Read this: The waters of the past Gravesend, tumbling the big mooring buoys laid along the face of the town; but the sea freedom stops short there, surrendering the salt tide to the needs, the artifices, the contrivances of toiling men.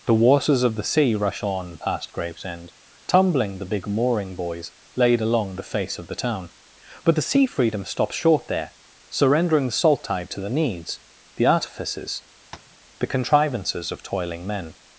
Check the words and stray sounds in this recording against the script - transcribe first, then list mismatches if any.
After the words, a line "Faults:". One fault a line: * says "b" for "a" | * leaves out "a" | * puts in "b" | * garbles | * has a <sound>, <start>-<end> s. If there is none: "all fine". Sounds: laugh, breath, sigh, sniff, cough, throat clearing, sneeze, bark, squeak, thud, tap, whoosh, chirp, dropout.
The waters of the sea rush on past Gravesend, tumbling the big mooring buoys laid along the face of the town; but the sea freedom stops short there, surrendering the salt tide to the needs, the artifices, the contrivances of toiling men.
Faults:
* puts in "sea rush on"
* has a tap, 12.5-12.8 s